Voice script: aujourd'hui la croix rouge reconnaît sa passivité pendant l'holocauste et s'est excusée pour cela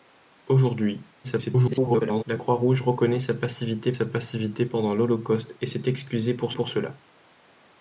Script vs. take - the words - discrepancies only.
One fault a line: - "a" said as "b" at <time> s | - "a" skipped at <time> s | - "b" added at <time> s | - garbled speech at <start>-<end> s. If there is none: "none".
- garbled speech at 1.2-2.2 s
- "sa passivité" added at 3.9 s
- "pour" added at 6.5 s